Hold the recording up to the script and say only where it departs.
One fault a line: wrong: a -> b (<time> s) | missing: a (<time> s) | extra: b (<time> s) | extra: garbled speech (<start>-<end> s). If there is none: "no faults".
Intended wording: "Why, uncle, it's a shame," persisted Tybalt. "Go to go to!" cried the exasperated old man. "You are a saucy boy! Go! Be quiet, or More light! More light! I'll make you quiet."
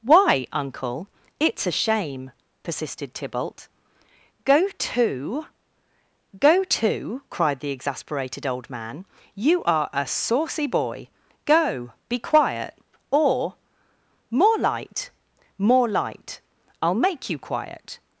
no faults